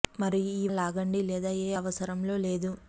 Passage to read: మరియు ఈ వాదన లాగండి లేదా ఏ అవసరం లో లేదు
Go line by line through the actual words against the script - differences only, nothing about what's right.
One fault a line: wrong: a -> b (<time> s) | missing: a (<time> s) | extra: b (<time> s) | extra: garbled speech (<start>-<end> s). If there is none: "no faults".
missing: వాదన (0.7 s)